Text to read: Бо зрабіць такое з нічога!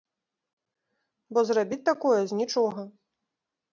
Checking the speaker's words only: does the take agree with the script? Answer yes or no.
yes